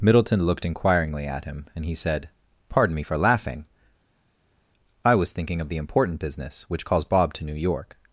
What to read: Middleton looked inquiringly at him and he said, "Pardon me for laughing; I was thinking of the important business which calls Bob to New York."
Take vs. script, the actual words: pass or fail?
pass